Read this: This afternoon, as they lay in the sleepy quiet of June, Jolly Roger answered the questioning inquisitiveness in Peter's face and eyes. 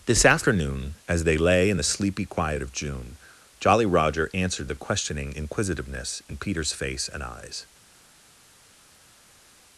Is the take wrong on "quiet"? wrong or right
right